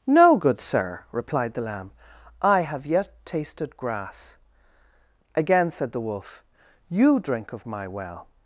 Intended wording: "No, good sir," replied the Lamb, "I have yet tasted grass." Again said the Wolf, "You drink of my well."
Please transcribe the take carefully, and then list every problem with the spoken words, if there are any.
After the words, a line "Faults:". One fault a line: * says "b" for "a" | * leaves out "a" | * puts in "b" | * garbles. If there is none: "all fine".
"No, good sir," replied the Lamb, "I have yet tasted grass." Again said the Wolf, "You drink of my well."
Faults:
all fine